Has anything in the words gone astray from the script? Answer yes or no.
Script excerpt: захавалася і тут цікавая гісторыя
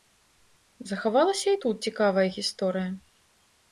no